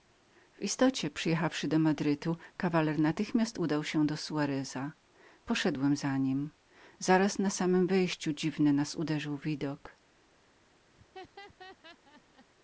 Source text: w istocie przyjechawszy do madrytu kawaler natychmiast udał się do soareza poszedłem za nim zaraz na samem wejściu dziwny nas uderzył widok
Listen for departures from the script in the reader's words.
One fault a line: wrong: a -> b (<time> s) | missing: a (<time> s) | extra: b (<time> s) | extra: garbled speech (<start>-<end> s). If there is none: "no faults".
no faults